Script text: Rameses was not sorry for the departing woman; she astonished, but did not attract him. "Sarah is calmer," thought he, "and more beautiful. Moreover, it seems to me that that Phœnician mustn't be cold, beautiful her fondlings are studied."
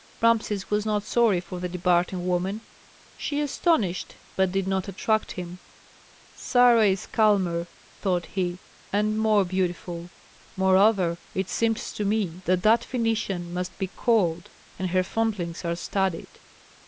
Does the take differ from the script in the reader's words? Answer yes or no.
yes